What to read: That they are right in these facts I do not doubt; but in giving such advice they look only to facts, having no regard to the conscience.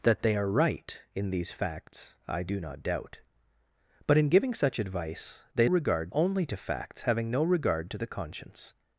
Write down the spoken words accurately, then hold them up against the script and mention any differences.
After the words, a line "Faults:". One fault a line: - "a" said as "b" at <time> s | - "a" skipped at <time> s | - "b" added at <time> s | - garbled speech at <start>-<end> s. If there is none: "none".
That they are right in these facts I do not doubt; but in giving such advice they regard only to facts, having no regard to the conscience.
Faults:
- "look" said as "regard" at 5.6 s